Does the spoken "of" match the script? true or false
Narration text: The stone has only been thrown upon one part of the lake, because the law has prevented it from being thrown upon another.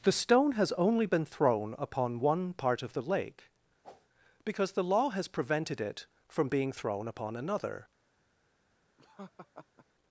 true